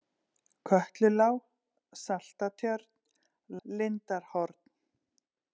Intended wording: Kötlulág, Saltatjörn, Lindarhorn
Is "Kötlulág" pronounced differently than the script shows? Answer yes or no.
no